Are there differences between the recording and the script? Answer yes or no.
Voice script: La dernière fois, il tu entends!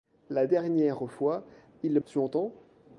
no